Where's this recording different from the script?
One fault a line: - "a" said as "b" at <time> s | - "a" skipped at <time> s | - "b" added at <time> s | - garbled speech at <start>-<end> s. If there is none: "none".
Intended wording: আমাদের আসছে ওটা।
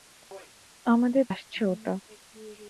none